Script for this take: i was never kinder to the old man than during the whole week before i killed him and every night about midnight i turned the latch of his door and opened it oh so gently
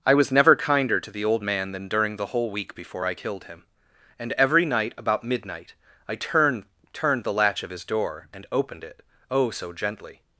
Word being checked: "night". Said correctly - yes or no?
yes